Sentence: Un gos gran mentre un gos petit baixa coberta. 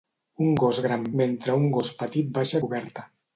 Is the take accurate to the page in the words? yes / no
yes